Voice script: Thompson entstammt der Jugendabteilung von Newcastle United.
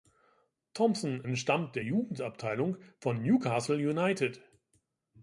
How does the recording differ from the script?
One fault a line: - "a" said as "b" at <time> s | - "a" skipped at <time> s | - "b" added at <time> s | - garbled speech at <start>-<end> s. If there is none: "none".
none